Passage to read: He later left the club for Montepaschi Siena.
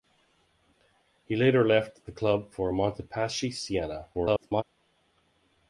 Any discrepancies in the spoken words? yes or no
yes